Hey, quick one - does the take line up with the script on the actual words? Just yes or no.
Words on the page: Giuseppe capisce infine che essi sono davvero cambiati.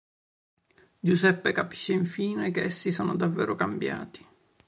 yes